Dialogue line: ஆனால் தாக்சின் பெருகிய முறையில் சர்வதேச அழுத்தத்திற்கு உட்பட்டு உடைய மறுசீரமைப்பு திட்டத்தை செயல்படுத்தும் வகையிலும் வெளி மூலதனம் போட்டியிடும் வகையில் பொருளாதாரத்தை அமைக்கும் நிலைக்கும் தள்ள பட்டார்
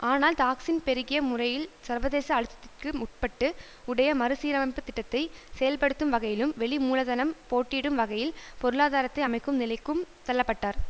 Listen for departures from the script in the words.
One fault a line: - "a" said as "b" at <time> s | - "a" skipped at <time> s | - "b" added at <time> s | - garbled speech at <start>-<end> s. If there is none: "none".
none